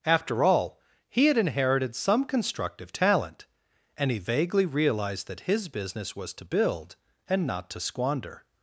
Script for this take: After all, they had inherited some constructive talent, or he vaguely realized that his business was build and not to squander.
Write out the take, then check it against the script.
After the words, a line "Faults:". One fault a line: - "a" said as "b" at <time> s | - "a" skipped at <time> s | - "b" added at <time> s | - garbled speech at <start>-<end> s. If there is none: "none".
After all, he had inherited some constructive talent, and he vaguely realized that his business was to build and not to squander.
Faults:
- "they" said as "he" at 1.1 s
- "or" said as "and" at 4.0 s
- "to" added at 6.3 s